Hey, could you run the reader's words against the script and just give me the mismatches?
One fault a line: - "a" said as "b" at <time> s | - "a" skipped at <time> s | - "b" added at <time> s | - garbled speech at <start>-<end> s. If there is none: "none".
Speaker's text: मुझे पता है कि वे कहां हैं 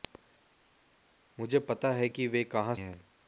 none